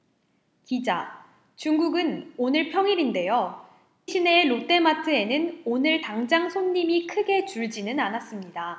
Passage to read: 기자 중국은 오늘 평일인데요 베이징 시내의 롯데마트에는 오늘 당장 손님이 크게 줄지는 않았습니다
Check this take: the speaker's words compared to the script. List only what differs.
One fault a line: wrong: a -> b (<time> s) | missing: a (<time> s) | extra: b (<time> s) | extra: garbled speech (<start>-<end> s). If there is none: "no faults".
missing: 베이징 (3.6 s)